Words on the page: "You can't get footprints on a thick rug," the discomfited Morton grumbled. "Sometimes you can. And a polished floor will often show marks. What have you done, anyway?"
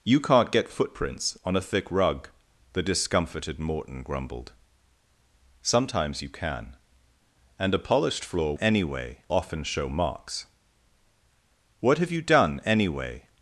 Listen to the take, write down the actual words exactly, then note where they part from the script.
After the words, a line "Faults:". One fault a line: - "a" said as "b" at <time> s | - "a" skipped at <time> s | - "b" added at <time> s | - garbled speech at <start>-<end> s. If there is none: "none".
"You can't get footprints on a thick rug," the discomfited Morton grumbled. "Sometimes you can. And a polished floor anyway often show marks. What have you done, anyway?"
Faults:
- "will" said as "anyway" at 8.6 s